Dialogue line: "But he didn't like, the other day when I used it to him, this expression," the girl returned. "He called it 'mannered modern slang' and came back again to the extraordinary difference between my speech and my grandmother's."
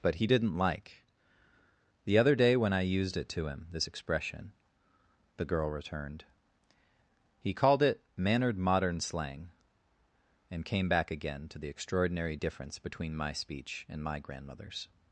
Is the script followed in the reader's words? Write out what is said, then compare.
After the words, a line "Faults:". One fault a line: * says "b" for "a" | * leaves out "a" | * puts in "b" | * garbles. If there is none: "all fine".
"But he didn't like, the other day when I used it to him, this expression," the girl returned. "He called it 'mannered modern slang' and came back again to the extraordinary difference between my speech and my grandmother's."
Faults:
all fine